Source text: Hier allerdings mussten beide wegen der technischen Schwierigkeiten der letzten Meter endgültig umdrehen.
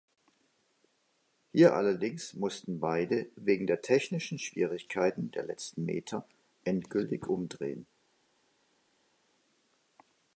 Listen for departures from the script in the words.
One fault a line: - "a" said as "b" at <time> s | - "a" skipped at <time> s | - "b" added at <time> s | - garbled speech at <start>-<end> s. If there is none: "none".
none